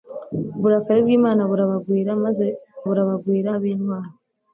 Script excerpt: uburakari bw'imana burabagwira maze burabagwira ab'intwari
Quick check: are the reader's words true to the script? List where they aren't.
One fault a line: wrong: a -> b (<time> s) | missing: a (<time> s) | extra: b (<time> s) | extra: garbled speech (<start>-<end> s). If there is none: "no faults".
no faults